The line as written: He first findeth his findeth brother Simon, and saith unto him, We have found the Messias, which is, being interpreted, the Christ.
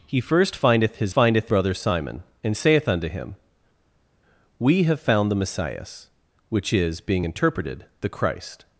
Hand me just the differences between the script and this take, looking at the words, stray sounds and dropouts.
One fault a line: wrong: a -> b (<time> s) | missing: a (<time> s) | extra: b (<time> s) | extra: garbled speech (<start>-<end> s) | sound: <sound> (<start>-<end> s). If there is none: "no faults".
no faults